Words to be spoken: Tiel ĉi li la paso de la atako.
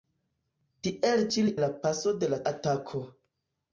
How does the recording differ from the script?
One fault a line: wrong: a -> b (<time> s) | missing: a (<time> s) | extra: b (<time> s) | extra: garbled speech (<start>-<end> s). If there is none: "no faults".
no faults